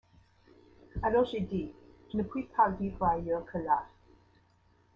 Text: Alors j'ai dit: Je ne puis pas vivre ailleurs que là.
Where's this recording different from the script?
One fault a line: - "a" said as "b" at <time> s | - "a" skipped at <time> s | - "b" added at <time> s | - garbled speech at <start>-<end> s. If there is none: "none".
none